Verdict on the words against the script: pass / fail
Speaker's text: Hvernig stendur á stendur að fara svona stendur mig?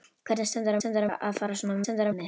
pass